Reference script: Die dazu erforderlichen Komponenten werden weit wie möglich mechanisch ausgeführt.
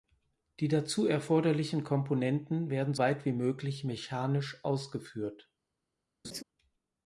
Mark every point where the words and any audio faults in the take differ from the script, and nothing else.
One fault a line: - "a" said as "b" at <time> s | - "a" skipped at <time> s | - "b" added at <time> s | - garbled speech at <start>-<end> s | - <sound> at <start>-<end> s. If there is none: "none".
- laugh at 6.2-6.4 s